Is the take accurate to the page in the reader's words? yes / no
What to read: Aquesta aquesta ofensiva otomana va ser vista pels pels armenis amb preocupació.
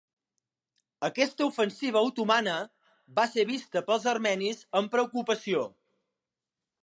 no